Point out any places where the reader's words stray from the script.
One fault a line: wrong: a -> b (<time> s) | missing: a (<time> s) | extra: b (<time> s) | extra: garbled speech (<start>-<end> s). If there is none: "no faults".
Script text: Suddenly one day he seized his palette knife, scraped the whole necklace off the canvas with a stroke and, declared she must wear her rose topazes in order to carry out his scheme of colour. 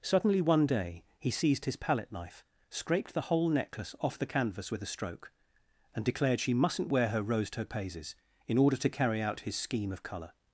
wrong: must -> mustn't (6.5 s)